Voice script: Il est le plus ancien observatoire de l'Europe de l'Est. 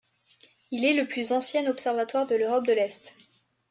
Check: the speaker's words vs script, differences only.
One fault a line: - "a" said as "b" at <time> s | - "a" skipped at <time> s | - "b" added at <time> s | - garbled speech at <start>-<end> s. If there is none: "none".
none